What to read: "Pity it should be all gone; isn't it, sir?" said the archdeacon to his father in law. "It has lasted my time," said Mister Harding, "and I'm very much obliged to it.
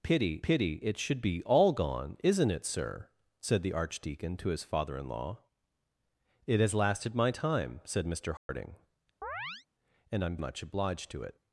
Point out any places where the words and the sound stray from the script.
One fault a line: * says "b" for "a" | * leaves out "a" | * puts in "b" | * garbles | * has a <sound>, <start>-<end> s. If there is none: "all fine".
* puts in "pity"
* has a dropout, 8.4-8.5 s
* has a chirp, 9.2-9.7 s
* leaves out "very"